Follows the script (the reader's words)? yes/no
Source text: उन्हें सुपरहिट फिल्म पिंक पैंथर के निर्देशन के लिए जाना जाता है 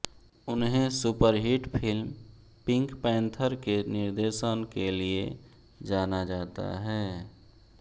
yes